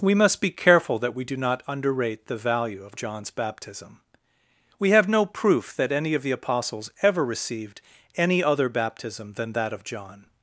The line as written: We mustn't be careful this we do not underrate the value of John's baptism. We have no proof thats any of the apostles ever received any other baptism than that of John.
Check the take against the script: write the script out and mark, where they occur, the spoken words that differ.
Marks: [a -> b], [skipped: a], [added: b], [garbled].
We [mustn't -> must] be careful [this -> that] we do not underrate the value of John's baptism. We have no proof [thats -> that] any of the apostles ever received any other baptism than that of John.